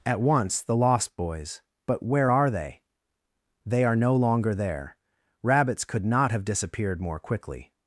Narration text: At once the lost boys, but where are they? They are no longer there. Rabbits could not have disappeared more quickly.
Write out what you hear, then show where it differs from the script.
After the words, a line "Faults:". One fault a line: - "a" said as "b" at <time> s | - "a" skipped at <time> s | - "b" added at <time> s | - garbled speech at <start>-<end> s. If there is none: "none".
At once the lost boys, but where are they? They are no longer there. Rabbits could not have disappeared more quickly.
Faults:
none